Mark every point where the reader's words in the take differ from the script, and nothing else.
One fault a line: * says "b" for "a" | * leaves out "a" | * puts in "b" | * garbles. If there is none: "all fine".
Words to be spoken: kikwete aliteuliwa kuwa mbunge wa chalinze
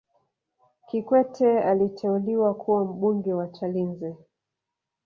all fine